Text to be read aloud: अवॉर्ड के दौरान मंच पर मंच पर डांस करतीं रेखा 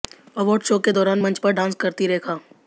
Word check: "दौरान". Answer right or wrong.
right